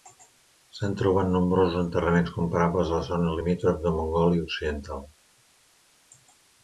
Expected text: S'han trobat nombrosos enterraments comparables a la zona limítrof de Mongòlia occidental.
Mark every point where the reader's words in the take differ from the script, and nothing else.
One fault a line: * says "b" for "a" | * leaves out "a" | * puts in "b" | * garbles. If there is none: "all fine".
all fine